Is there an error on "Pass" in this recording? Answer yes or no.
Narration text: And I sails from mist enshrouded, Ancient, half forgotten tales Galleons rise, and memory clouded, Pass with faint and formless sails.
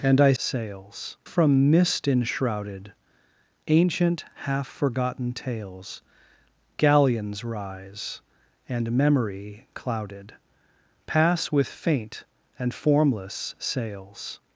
no